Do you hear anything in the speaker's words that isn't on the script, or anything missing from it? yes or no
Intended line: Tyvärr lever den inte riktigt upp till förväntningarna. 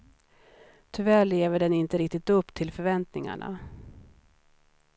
no